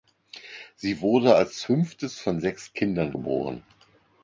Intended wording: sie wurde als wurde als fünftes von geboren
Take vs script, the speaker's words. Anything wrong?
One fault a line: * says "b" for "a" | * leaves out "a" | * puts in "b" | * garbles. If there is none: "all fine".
* says "fünftes von sechs kindern" for "wurde als fünftes von"